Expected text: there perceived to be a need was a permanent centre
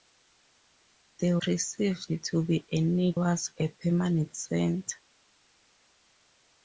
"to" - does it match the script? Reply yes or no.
yes